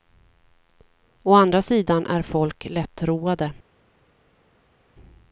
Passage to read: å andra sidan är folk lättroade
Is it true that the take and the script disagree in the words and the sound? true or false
false